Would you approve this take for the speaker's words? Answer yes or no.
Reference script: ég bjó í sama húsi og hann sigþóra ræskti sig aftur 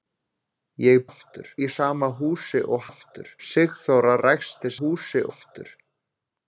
no